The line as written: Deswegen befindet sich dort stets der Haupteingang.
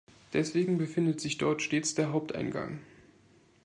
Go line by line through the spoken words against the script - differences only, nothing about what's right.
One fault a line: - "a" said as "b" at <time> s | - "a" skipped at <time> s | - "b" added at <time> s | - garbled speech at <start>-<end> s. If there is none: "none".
none